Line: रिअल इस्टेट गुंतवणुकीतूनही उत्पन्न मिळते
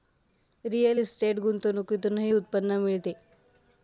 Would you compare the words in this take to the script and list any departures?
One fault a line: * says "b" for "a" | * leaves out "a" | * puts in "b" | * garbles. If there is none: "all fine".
all fine